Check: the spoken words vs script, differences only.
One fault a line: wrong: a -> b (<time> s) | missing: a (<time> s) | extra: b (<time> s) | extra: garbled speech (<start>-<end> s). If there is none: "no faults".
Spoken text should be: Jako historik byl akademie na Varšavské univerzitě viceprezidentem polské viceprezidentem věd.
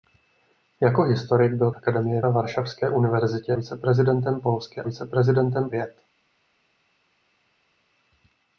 no faults